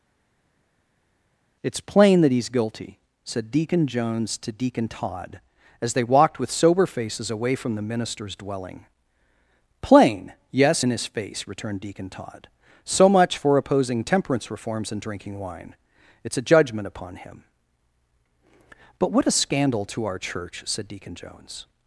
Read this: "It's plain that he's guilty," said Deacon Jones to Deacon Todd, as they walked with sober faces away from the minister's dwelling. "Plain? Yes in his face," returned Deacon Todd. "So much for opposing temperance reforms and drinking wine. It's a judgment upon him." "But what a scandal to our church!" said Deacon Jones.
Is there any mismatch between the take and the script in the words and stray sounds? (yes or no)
no